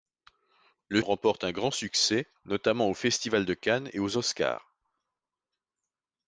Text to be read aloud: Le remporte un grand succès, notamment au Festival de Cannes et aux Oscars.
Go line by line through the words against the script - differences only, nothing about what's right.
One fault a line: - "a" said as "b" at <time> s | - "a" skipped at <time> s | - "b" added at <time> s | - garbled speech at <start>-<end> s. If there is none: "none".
none